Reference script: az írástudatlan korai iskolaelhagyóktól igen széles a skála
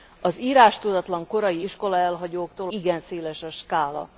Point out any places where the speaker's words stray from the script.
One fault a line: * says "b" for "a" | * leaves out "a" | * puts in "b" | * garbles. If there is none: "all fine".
all fine